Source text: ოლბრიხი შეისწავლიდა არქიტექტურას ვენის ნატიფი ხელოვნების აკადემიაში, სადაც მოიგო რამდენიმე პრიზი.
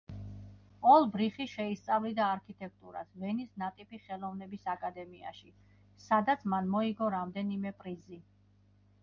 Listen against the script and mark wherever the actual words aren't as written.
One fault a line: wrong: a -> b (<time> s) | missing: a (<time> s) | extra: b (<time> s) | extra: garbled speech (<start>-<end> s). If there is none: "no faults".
extra: მან (6.5 s)